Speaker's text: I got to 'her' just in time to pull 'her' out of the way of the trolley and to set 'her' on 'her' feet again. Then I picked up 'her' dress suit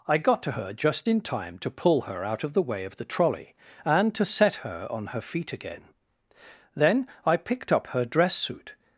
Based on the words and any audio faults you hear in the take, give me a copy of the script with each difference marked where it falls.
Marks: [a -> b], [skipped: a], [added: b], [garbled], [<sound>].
I got to 'her' just in time to pull 'her' out of the way of the trolley and to set 'her' on 'her' feet again. Then I picked up 'her' dress suit